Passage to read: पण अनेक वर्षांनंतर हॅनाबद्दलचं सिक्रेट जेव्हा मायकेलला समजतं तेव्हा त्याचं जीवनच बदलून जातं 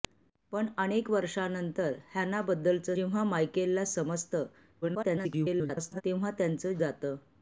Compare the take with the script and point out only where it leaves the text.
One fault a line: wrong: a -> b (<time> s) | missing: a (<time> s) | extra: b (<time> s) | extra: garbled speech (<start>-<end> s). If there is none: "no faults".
missing: सिक्रेट (3.0 s)
extra: garbled speech (4.8-6.0 s)
missing: जीवनच बदलून (6.7 s)